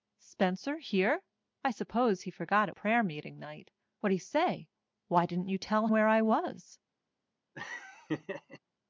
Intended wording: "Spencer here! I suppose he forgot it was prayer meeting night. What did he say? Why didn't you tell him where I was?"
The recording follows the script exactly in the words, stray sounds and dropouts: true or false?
false